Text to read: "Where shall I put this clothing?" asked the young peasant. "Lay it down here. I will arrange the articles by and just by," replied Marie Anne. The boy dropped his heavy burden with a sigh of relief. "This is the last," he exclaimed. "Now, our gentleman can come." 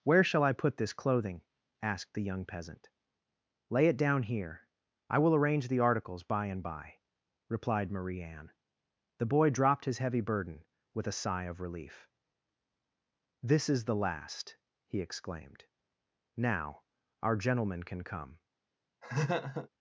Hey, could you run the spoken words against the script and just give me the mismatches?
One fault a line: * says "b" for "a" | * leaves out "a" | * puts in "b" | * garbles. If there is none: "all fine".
* leaves out "just"